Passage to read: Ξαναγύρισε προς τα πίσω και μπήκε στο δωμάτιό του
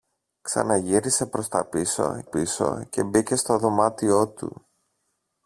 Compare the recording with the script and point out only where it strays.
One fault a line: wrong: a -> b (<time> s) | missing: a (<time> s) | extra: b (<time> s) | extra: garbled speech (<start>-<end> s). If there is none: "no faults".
extra: πίσω (2.2 s)